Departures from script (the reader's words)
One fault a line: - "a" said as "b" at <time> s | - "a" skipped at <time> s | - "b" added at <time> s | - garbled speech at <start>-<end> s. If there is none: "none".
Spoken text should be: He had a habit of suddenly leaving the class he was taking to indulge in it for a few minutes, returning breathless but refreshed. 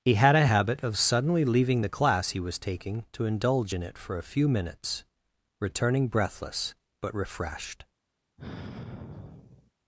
none